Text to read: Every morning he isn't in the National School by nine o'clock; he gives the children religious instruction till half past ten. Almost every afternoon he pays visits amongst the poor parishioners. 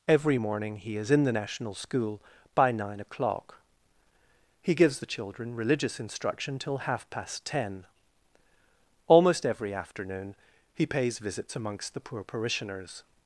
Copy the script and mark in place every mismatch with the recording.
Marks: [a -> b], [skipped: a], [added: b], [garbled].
Every morning he [isn't -> is] in the National School by nine o'clock; he gives the children religious instruction till half past ten. Almost every afternoon he pays visits amongst the poor parishioners.